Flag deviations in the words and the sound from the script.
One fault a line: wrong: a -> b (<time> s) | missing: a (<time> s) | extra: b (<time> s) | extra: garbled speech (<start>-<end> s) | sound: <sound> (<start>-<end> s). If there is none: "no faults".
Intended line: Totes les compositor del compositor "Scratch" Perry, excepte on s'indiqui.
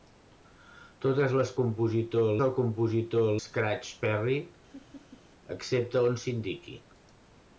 sound: laugh (4.7-5.2 s)